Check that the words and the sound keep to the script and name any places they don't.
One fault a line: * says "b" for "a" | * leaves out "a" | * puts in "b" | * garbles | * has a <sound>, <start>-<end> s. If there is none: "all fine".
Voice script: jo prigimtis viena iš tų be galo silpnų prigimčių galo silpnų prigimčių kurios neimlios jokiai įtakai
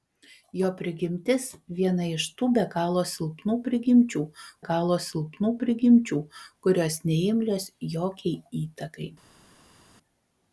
all fine